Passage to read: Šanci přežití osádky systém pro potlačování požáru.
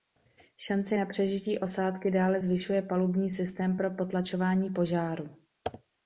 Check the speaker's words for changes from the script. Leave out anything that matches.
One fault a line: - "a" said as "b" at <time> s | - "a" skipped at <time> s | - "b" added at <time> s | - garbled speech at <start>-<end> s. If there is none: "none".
- "na" added at 0.9 s
- "dále zvyšuje palubní" added at 2.1 s